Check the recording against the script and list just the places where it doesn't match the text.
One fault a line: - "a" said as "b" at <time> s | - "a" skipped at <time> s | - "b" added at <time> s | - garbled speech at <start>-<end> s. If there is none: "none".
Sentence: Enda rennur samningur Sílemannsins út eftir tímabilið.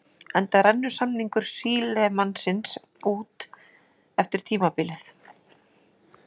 none